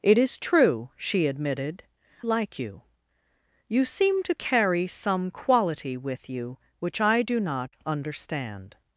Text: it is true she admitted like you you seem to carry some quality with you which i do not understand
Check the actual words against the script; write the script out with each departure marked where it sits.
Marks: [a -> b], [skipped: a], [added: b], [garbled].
it is true she admitted like you you seem to carry some quality with you which i do not understand